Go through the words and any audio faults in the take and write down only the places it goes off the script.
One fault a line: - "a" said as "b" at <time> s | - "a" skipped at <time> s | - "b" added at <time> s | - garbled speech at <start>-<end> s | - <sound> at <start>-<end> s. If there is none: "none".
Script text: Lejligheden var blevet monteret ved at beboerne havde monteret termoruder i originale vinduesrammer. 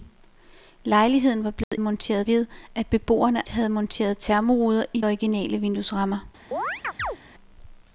- dropout at 1.6-1.7 s
- chirp at 6.5-7.2 s